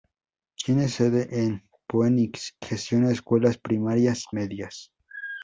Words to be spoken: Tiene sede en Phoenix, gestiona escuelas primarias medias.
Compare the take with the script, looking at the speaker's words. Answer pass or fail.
pass